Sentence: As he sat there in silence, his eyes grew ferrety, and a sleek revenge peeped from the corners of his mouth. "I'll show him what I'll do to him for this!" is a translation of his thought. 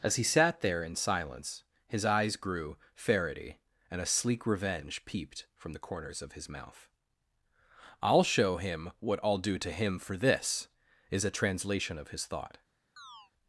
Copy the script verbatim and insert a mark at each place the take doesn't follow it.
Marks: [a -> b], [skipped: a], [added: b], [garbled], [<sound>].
As he sat there in silence, his eyes grew ferrety, and a sleek revenge peeped from the corners of his mouth. "I'll show him what I'll do to him for this!" is a translation of his thought. [chirp]